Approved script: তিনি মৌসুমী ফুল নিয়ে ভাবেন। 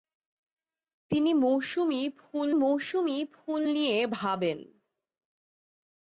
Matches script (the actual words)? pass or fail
fail